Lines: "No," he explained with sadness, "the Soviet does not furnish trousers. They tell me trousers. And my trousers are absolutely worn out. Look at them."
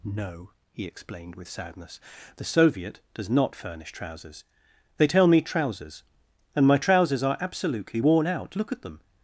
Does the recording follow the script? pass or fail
pass